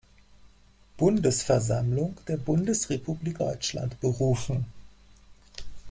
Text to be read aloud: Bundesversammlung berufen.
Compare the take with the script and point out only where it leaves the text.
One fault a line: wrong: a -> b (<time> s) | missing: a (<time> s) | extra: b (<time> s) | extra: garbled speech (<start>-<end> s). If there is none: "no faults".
extra: der Bundesrepublik Deutschland (2.3 s)